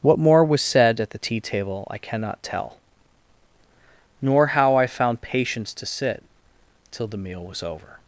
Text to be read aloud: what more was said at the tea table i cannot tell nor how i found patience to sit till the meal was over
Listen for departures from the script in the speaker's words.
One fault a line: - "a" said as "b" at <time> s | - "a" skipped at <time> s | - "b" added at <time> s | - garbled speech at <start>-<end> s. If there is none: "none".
none